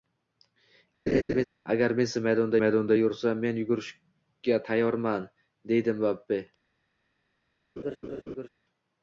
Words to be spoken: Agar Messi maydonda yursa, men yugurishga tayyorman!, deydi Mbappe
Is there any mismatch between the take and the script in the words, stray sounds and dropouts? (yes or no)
yes